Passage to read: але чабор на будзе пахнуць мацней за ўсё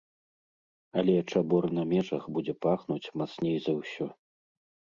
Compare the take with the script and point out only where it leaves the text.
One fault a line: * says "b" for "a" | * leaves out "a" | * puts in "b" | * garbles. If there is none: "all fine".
* puts in "межах"